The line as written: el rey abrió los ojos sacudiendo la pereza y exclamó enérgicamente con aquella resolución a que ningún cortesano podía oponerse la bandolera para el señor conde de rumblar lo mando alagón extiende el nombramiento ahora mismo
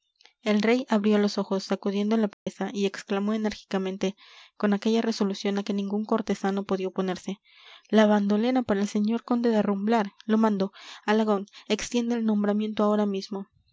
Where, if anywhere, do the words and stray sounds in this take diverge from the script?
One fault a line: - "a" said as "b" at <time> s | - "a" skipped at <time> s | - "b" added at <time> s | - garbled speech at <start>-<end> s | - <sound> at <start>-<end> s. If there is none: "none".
- dropout at 2.3-2.5 s